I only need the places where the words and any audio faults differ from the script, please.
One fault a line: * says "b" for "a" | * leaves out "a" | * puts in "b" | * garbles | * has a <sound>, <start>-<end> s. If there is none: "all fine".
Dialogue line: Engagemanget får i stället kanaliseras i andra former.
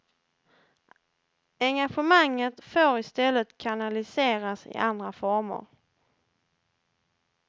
all fine